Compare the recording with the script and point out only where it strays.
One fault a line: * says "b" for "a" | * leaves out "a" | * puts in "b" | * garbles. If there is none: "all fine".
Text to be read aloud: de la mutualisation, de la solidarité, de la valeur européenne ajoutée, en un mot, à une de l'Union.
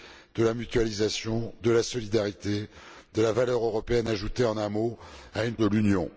all fine